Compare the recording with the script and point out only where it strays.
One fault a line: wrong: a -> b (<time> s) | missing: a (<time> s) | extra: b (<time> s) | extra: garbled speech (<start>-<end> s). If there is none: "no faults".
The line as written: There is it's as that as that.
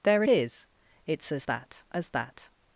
no faults